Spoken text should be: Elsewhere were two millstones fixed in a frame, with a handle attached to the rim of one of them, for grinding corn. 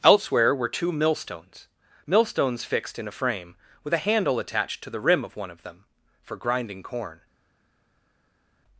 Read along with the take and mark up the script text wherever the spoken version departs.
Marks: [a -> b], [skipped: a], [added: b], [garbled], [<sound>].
Elsewhere were two millstones [added: millstones] fixed in a frame, with a handle attached to the rim of one of them, for grinding corn.